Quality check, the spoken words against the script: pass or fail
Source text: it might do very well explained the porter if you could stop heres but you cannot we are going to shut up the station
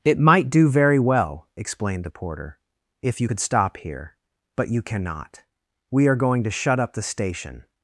fail